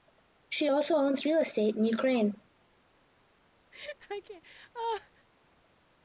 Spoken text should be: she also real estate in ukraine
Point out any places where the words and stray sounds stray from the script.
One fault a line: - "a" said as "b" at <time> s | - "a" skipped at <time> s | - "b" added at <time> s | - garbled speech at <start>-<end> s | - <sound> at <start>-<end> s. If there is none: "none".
- "owns" added at 0.9 s
- laugh at 3.7-5.3 s